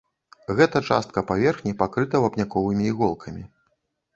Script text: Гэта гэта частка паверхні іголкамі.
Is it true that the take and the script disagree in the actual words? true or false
true